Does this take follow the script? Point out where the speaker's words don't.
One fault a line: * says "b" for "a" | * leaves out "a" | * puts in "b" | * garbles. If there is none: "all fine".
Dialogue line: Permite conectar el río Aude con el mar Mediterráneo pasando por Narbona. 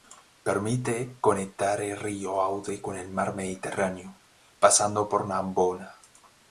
all fine